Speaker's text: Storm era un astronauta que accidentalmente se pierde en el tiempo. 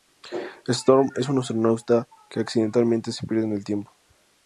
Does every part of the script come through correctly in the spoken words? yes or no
no